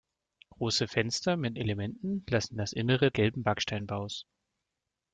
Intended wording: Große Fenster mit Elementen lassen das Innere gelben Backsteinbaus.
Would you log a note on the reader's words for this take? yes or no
no